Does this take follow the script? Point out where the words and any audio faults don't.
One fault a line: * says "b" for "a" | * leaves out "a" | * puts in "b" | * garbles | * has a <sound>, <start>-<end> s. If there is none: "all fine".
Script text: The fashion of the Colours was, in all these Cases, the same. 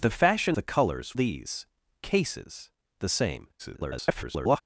* leaves out "of"
* leaves out "was in all"
* garbles